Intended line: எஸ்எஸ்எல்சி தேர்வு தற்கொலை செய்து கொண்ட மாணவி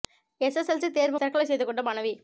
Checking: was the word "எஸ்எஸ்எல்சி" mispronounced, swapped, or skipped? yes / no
no